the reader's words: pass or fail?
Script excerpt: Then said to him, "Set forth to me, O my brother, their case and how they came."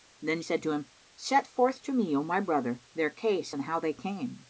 pass